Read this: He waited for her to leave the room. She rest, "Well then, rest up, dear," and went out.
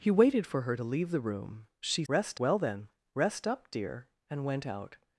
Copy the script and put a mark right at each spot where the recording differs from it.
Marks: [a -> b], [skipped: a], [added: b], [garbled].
He waited for her to leave the room. She rest, "Well then, rest up, dear," and went out.